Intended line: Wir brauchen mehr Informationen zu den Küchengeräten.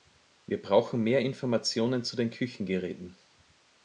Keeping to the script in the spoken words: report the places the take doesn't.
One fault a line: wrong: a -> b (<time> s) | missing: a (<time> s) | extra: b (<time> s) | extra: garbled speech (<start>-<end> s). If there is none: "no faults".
no faults